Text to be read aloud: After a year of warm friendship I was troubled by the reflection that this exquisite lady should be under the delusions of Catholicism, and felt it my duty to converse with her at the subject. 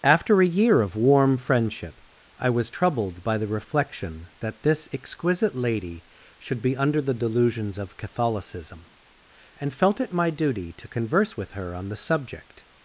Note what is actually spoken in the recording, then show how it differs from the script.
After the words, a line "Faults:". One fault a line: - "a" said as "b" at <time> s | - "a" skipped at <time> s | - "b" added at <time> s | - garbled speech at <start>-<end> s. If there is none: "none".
After a year of warm friendship I was troubled by the reflection that this exquisite lady should be under the delusions of Catholicism, and felt it my duty to converse with her on the subject.
Faults:
- "at" said as "on" at 11.7 s